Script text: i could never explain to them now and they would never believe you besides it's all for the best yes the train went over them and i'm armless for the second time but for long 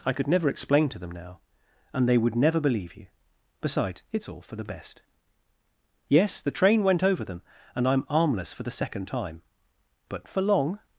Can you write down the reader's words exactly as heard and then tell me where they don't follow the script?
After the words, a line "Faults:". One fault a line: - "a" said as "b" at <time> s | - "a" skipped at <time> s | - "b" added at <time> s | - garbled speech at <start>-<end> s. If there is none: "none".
i could never explain to them now and they would never believe you besides it's all for the best yes the train went over them and i'm armless for the second time but for long
Faults:
none